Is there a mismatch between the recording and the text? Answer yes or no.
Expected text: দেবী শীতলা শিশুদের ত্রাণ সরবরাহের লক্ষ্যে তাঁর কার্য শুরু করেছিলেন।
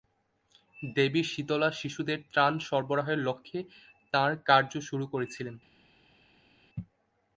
no